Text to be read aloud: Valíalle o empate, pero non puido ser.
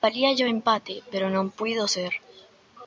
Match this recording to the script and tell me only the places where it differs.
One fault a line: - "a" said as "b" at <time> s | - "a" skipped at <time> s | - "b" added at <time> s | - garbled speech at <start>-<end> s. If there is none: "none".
none